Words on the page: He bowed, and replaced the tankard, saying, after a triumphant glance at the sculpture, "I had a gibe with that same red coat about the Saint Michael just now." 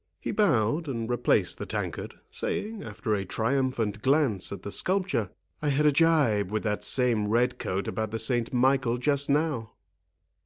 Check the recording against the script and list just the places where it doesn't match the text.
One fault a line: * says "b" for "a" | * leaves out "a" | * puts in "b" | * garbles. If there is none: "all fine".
all fine